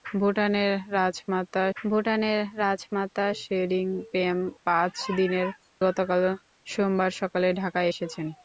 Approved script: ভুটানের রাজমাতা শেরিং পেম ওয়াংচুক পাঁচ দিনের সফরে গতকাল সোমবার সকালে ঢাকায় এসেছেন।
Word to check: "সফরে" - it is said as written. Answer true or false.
false